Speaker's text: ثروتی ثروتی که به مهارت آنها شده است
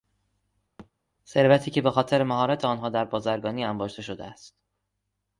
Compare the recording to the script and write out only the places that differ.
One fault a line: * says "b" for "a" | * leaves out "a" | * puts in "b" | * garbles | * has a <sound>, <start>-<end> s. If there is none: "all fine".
* has a thud, 0.8-0.9 s
* leaves out "ثروتی"
* puts in "خاطر"
* puts in "در بازرگانی انباشته"